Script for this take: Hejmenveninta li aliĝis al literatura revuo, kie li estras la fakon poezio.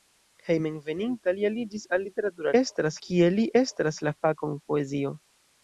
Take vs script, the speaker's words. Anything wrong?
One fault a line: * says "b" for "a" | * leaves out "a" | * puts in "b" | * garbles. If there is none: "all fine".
* says "estras" for "revuo"